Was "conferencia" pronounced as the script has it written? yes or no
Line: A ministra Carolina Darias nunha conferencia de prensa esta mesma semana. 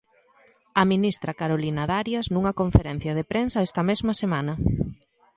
yes